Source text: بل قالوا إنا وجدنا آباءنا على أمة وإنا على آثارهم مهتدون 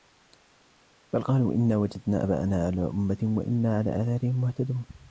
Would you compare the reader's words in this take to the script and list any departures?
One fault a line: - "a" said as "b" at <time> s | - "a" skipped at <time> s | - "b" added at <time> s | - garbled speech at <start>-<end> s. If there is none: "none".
none